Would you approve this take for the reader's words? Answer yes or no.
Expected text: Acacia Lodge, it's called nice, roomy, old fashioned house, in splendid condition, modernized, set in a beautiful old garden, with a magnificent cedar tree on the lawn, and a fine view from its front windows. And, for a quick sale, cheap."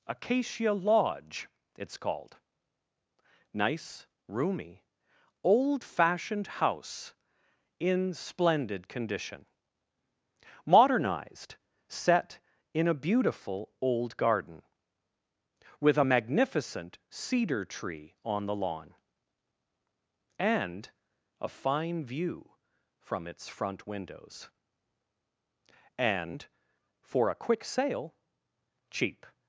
yes